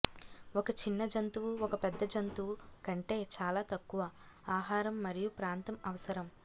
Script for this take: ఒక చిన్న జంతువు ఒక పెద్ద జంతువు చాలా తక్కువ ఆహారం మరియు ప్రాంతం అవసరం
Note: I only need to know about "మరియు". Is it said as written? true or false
true